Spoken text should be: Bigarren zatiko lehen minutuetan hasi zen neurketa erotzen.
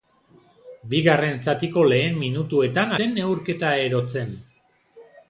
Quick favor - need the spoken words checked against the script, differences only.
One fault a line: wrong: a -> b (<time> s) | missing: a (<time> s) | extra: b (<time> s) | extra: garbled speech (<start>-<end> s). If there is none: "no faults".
missing: hasi (3.0 s)